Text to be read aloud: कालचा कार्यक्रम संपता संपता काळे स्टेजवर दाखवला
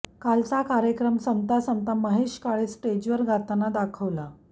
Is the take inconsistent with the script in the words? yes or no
yes